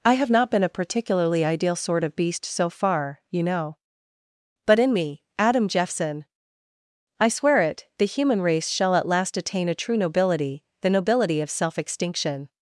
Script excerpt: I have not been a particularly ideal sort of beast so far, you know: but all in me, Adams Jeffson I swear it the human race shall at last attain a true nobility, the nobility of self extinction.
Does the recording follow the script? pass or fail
fail